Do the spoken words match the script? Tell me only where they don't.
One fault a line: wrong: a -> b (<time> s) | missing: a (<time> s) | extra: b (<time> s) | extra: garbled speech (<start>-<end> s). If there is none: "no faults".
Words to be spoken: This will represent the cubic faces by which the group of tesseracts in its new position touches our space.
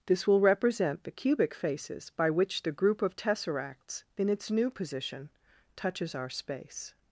no faults